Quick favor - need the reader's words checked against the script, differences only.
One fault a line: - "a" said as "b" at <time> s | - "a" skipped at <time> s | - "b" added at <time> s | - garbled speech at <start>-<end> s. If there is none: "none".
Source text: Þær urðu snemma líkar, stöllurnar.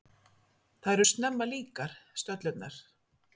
- "urðu" skipped at 1.0 s